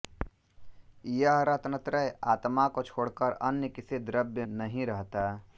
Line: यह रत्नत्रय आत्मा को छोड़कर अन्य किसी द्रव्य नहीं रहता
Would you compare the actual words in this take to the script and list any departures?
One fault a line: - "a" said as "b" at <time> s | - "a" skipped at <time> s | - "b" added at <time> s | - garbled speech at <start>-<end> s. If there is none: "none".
none